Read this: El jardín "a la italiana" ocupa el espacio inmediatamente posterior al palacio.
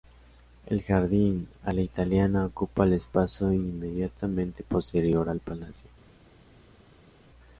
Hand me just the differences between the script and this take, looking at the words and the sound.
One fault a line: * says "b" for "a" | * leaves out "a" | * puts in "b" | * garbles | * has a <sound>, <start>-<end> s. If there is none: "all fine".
all fine